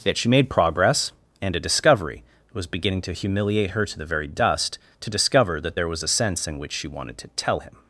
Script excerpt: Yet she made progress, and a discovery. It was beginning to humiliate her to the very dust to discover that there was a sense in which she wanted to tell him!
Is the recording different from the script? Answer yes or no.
no